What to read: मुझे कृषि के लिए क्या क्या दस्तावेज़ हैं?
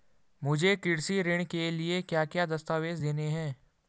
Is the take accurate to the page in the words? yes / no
no